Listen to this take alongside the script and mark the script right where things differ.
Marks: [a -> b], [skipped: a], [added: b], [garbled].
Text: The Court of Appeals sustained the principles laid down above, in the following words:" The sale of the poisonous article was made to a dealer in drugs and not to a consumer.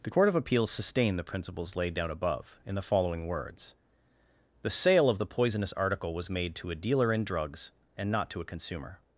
The Court of Appeals sustained the principles laid down above, in the following words:" The sale of the poisonous article was made to a dealer in drugs and not to a consumer.